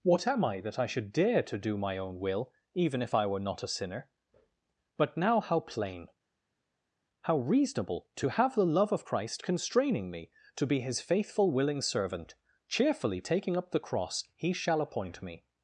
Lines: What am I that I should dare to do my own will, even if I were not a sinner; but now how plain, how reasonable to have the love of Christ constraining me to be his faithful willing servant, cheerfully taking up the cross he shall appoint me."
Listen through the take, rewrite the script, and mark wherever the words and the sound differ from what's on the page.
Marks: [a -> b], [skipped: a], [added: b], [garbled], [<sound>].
What am I that I should dare to do my own will, even if I were not a sinner; but now how plain, how reasonable to have the love of Christ constraining me to be his faithful willing servant, cheerfully taking up the cross he shall appoint me."